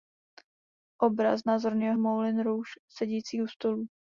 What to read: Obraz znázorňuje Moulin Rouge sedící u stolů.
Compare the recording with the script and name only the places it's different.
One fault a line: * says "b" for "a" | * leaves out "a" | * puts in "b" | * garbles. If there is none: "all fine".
all fine